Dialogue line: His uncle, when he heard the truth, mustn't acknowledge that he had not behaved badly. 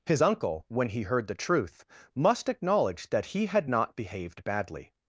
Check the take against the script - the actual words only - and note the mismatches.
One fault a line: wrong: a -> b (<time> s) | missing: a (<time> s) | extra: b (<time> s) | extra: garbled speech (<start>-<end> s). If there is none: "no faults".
wrong: mustn't -> must (2.1 s)